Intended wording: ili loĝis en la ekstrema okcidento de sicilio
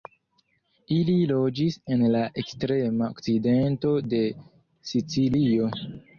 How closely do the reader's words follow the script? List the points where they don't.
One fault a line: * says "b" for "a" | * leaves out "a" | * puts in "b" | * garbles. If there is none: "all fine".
all fine